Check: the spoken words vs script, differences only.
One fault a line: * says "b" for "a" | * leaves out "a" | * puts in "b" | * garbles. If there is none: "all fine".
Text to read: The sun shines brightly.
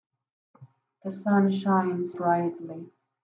all fine